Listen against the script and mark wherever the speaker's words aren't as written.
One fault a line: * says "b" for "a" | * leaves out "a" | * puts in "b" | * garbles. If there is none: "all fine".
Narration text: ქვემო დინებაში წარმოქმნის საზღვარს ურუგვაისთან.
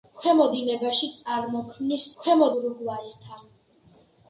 * says "ქვემო" for "საზღვარს"